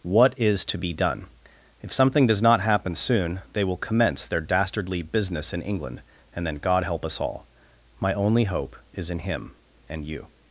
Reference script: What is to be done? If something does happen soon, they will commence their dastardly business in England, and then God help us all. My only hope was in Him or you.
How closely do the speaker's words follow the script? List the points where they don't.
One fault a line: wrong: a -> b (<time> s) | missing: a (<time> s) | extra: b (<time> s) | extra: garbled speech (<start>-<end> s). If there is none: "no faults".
extra: not (2.4 s)
wrong: was -> is (8.9 s)
wrong: or -> and (9.9 s)